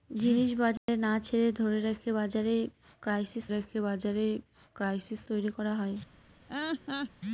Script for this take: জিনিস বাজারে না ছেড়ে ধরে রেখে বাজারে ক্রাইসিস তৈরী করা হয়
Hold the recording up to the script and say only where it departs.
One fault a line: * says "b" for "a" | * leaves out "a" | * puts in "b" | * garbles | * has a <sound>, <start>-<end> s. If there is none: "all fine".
* has a dropout, 0.8-0.9 s
* puts in "রেখে বাজারে ক্রাইসিস"
* has a laugh, 6.5-7.1 s